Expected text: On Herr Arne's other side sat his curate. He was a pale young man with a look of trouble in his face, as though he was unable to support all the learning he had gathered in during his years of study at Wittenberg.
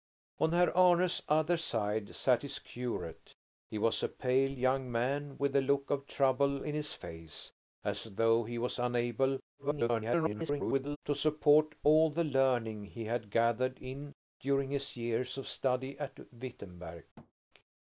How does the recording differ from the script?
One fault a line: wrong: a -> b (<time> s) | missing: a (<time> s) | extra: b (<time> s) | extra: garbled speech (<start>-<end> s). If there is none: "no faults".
extra: garbled speech (9.6-11.0 s)